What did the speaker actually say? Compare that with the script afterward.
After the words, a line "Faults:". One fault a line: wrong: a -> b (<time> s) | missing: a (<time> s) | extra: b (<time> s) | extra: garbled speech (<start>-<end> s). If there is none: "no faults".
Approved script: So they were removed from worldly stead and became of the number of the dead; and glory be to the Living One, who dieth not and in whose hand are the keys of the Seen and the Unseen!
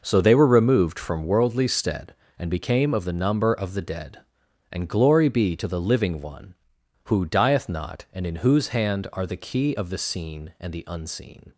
So they were removed from worldly stead and became of the number of the dead; and glory be to the Living One, who dieth not and in whose hand are the key of the Seen and the Unseen!
Faults:
wrong: keys -> key (9.4 s)